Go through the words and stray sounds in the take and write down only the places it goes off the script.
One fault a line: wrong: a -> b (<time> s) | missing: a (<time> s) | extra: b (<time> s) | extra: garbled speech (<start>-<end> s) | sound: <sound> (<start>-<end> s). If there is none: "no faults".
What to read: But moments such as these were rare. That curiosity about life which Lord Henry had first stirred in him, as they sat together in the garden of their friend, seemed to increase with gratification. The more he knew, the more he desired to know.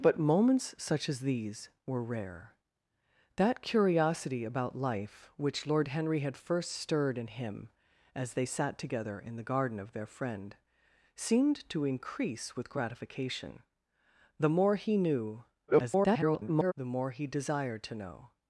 extra: garbled speech (15.7-16.7 s)